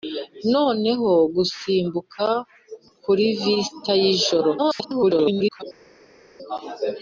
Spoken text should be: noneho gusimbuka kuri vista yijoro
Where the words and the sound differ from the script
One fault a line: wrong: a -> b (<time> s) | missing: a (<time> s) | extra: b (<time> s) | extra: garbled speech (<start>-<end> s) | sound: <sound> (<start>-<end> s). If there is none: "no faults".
extra: garbled speech (4.6-5.6 s)